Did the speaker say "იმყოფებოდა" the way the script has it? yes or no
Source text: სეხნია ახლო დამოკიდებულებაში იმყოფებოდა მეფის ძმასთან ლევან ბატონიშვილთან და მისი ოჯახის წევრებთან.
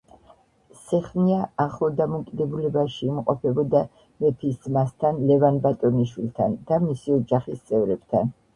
yes